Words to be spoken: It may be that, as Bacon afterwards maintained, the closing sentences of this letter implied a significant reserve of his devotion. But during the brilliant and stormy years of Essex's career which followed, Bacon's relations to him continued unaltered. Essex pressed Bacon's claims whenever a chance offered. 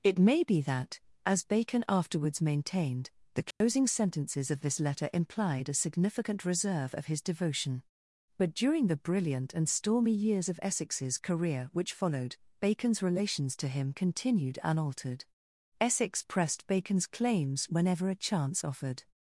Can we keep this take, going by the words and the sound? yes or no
no